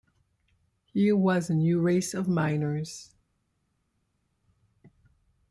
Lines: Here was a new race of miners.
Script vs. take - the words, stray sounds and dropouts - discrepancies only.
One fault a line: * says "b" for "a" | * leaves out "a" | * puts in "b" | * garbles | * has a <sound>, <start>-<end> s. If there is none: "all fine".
all fine